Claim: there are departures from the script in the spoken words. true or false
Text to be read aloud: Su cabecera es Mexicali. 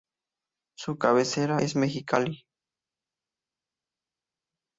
false